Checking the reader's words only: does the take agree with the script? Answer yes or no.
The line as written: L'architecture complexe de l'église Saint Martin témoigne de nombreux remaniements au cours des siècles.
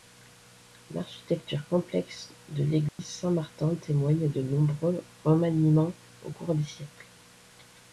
yes